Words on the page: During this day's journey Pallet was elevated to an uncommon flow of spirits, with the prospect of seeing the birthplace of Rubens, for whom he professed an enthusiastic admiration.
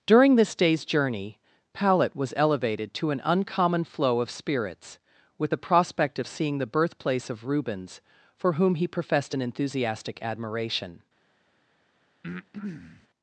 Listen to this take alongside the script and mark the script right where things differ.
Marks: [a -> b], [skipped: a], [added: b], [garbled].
During this day's journey Pallet was elevated to an uncommon flow of spirits, with the prospect of seeing the birthplace of Rubens, for whom he professed an enthusiastic admiration.